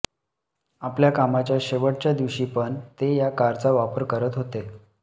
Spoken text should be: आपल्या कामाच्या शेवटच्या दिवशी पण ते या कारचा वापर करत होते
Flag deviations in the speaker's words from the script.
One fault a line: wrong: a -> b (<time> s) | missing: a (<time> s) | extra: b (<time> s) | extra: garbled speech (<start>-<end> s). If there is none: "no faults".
no faults